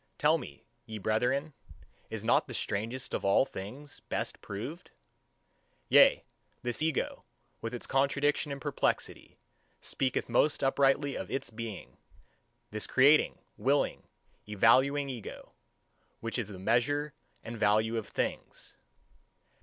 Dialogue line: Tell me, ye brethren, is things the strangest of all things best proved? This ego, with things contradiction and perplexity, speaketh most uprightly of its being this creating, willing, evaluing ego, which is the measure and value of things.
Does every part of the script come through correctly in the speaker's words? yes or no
no